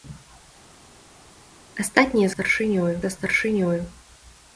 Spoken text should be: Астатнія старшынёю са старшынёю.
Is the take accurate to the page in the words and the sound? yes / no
yes